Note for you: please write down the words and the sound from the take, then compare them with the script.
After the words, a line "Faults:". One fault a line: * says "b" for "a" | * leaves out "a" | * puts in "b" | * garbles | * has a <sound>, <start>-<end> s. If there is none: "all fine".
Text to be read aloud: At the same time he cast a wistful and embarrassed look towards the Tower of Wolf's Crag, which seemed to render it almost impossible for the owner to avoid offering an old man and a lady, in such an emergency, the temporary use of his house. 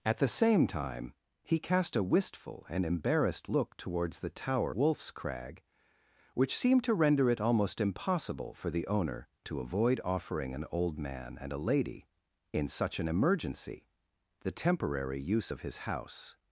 At the same time he cast a wistful and embarrassed look towards the Tower Wolf's Crag, which seemed to render it almost impossible for the owner to avoid offering an old man and a lady, in such an emergency, the temporary use of his house.
Faults:
* leaves out "of"